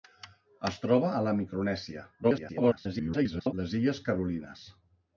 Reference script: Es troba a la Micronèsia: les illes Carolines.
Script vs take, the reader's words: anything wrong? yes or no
yes